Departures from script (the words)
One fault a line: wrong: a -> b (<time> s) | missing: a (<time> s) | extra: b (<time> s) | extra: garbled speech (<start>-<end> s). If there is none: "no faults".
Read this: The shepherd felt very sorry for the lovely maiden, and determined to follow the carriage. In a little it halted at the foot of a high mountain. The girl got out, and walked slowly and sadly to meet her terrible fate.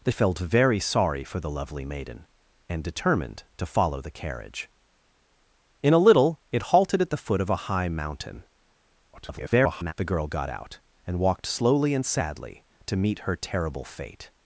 missing: shepherd (0.1 s)
extra: garbled speech (9.1-9.9 s)